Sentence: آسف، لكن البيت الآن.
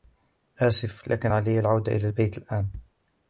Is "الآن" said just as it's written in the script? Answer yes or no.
yes